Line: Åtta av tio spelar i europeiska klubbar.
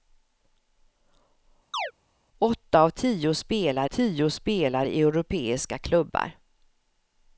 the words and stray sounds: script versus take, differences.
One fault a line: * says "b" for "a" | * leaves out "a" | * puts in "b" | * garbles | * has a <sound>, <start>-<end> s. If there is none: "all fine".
* has a chirp, 1.7-1.9 s
* puts in "tio spelar"